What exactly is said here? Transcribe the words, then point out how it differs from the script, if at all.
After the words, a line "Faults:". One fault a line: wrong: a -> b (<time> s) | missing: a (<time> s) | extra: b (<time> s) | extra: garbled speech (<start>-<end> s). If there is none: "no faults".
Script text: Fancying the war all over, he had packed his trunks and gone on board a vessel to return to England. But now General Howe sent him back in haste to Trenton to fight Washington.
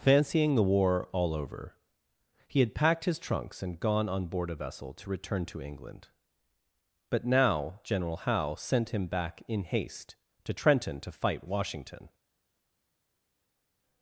Fancying the war all over, he had packed his trunks and gone on board a vessel to return to England. But now General Howe sent him back in haste to Trenton to fight Washington.
Faults:
no faults